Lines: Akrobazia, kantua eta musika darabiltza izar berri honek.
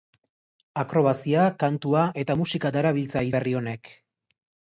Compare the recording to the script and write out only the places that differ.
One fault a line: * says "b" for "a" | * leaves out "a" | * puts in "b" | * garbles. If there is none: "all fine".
* leaves out "izar"